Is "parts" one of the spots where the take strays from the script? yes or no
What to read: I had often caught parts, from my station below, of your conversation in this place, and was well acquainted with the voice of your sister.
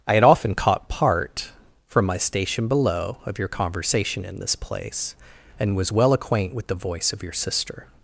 yes